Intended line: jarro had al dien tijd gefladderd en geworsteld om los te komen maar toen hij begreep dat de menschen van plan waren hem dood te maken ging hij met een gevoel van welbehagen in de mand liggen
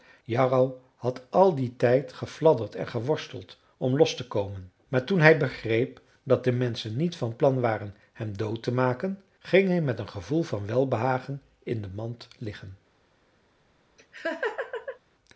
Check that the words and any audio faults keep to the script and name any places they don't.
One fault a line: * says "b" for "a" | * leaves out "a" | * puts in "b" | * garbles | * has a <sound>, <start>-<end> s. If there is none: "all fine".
* puts in "niet"
* has a laugh, 14.0-15.0 s